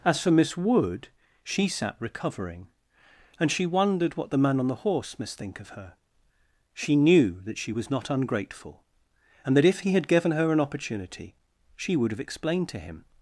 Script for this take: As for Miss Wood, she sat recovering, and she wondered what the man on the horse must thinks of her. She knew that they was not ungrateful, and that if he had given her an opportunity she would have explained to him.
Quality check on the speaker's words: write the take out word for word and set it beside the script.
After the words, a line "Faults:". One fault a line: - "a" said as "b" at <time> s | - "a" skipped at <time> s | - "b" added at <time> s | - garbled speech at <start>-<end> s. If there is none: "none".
As for Miss Wood, she sat recovering, and she wondered what the man on the horse must think of her. She knew that she was not ungrateful, and that if he had given her an opportunity she would have explained to him.
Faults:
- "thinks" said as "think" at 5.4 s
- "they" said as "she" at 7.6 s